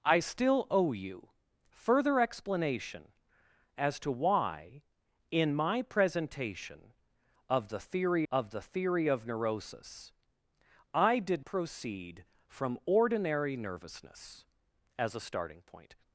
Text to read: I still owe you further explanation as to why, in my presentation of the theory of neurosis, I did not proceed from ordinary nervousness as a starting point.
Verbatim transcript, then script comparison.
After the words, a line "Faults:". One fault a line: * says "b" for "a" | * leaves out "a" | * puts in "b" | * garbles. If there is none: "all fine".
I still owe you further explanation as to why, in my presentation of the theory of the theory of neurosis, I did proceed from ordinary nervousness as a starting point.
Faults:
* puts in "the theory of"
* leaves out "not"